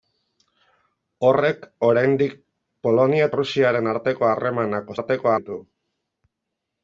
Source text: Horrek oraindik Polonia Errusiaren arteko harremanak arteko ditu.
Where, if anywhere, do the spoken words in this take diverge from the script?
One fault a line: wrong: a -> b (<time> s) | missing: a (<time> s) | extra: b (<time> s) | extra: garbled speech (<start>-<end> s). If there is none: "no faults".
no faults